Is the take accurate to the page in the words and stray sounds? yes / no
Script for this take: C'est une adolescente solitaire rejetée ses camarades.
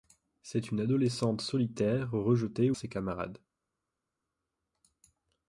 yes